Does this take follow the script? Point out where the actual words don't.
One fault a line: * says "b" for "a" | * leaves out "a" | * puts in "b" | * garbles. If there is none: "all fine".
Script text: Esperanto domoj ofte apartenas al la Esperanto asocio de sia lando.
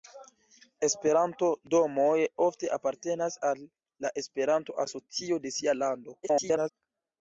* garbles